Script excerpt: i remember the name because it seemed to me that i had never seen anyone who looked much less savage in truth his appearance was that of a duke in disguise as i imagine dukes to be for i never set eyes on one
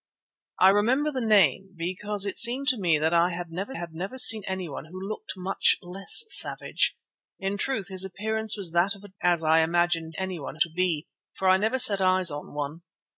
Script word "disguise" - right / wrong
wrong